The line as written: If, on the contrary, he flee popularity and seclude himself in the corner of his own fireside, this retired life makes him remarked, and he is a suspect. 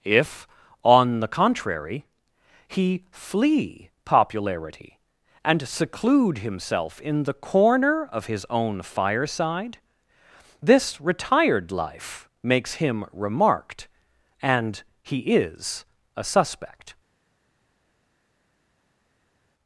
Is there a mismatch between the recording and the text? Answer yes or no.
no